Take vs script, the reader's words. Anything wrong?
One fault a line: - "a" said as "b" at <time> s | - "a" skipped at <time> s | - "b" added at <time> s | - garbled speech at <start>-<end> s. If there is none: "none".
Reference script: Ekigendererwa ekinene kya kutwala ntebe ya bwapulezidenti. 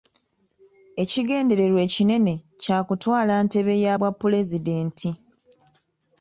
none